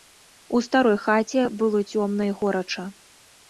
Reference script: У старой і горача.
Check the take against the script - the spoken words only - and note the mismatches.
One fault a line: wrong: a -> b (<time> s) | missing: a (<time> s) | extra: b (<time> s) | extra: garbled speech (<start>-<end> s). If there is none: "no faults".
extra: хаце было цёмна (1.0 s)